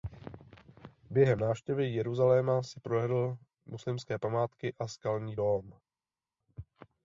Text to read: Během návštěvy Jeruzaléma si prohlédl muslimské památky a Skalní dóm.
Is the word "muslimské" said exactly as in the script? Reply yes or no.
yes